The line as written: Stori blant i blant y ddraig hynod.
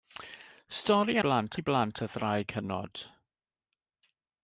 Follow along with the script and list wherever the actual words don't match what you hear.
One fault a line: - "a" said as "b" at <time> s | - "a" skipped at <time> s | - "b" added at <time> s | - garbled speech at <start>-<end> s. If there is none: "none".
none